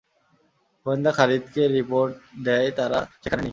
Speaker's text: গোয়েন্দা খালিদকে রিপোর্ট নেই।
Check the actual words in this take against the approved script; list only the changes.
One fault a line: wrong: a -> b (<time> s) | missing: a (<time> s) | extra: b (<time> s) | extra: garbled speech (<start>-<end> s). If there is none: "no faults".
extra: দেয় তারা সেখানে (2.5 s)